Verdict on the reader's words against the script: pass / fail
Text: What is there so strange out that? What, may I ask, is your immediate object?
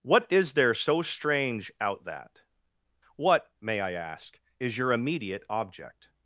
pass